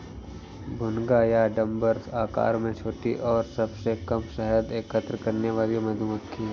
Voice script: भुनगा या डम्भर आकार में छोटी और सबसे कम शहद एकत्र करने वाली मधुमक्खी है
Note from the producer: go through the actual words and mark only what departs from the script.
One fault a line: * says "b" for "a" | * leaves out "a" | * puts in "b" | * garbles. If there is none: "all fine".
all fine